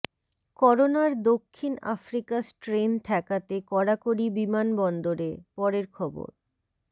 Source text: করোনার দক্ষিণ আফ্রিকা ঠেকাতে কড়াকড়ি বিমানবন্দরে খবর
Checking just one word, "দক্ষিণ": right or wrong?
right